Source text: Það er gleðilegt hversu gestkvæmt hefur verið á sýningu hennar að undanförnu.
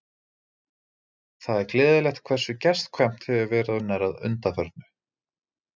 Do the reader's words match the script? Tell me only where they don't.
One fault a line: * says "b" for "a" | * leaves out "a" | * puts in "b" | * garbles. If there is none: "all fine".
* leaves out "á sýningu"